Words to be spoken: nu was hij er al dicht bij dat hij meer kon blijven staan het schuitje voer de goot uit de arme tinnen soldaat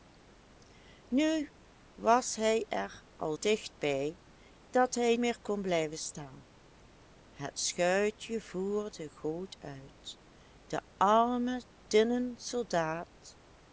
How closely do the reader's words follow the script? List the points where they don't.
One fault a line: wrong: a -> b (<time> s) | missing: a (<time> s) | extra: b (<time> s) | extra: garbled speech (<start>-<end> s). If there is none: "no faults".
no faults